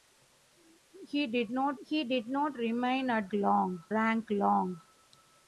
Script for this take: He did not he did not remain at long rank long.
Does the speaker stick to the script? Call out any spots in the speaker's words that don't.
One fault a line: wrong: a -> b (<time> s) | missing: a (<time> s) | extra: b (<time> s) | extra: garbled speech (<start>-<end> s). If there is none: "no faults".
no faults